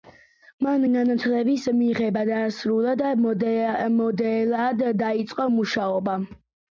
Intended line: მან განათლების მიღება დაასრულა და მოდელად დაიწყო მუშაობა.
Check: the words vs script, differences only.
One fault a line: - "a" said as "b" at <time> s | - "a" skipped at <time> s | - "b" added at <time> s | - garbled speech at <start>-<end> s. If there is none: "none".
none